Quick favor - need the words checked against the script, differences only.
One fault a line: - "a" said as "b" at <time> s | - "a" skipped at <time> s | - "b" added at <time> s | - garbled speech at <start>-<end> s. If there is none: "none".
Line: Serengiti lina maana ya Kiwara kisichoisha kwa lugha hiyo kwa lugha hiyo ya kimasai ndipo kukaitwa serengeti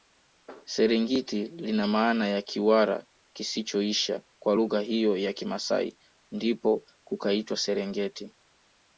- "kwa lugha hiyo" skipped at 5.2 s